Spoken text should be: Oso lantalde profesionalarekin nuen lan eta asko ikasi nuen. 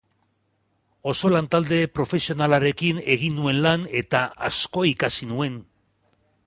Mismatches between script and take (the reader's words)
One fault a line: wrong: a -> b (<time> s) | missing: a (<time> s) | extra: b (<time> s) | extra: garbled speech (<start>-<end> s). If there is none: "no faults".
extra: egin (3.2 s)